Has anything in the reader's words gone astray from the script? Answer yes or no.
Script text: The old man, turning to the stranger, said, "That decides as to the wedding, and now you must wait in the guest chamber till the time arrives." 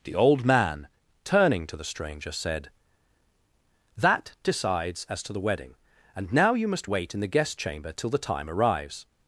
no